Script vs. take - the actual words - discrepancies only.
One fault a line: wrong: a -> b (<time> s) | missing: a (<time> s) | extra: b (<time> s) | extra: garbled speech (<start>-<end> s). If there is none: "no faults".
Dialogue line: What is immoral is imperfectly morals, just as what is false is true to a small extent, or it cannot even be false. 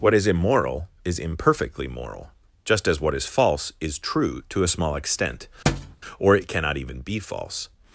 wrong: morals -> moral (1.9 s)